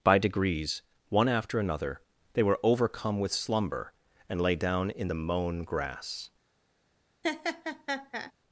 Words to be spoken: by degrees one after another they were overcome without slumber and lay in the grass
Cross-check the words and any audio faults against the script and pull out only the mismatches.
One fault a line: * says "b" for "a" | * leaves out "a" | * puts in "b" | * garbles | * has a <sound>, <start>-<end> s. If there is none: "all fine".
* says "with" for "without"
* puts in "down"
* puts in "mown"
* has a laugh, 7.2-8.3 s